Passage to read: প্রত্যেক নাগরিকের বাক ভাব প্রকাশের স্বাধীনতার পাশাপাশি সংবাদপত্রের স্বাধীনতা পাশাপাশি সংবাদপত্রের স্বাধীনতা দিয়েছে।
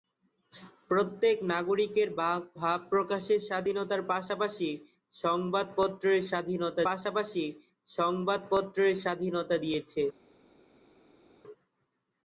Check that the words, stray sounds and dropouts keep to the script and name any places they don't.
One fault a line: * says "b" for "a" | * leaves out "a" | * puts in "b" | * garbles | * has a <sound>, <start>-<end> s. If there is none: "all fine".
all fine